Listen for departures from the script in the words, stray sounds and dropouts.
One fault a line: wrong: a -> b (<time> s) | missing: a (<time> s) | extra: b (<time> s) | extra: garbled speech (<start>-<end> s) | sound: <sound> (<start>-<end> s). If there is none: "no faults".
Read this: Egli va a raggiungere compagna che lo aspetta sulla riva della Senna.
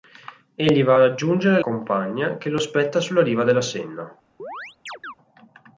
sound: chirp (4.4-5.1 s)